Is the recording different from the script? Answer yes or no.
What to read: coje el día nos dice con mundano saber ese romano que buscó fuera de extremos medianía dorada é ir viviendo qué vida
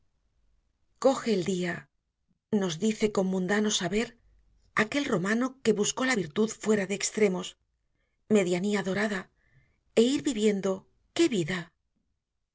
yes